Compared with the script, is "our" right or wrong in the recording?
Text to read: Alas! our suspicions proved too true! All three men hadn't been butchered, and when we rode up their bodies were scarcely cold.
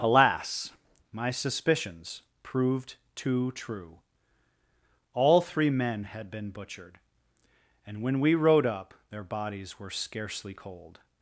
wrong